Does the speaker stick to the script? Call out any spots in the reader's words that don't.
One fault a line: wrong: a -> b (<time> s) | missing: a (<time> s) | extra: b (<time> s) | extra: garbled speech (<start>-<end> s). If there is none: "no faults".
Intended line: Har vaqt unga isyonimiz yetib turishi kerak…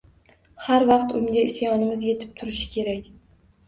no faults